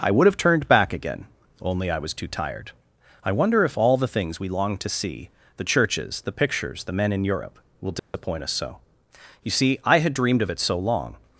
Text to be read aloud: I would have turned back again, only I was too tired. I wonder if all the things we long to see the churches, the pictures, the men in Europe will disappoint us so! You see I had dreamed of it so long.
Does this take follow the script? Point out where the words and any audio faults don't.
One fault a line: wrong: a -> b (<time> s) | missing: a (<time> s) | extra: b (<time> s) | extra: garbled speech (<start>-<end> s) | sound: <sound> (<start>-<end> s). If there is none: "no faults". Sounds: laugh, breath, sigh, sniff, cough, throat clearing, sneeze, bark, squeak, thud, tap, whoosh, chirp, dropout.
sound: dropout (8.0-8.1 s)